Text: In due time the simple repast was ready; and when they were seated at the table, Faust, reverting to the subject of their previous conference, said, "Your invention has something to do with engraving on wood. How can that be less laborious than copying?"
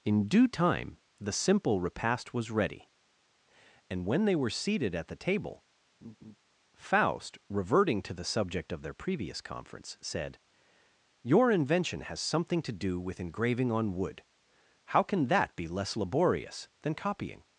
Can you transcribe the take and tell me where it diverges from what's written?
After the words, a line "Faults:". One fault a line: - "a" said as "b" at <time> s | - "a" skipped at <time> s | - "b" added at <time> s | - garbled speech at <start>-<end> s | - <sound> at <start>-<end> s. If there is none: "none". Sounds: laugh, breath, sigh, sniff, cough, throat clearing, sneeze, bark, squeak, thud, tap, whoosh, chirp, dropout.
In due time the simple repast was ready; and when they were seated at the table, Faust, reverting to the subject of their previous conference, said, "Your invention has something to do with engraving on wood. How can that be less laborious than copying?"
Faults:
- laugh at 6.0-6.4 s